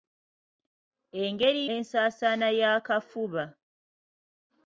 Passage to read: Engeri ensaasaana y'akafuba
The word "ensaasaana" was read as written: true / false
true